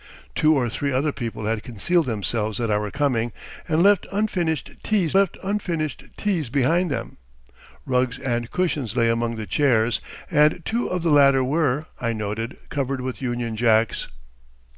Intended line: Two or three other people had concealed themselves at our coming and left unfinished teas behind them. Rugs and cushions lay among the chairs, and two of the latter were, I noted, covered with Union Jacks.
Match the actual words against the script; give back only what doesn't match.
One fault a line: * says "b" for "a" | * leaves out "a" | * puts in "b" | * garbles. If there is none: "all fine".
* puts in "left unfinished teas"